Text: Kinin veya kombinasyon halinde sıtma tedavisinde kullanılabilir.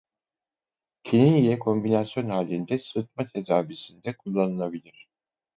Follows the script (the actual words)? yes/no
no